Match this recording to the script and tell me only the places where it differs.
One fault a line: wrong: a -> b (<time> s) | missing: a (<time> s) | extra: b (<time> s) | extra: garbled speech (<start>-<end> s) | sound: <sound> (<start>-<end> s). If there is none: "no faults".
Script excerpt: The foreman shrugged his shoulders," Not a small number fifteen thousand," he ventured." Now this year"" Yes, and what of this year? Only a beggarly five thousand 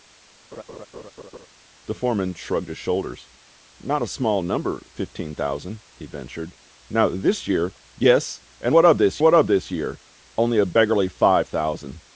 sound: laugh (0.5-1.5 s)
extra: what of this (9.2 s)